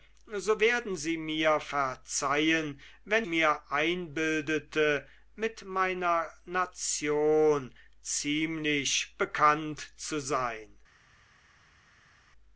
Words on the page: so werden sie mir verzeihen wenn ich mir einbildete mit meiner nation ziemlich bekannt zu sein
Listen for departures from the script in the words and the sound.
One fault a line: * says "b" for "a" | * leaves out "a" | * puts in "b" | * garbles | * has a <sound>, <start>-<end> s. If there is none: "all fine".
* leaves out "ich"